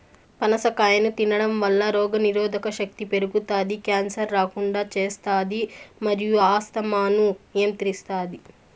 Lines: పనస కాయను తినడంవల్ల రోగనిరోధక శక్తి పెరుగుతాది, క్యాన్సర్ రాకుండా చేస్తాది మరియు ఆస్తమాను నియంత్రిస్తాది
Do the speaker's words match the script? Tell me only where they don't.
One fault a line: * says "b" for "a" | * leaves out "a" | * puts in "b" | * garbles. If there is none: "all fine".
all fine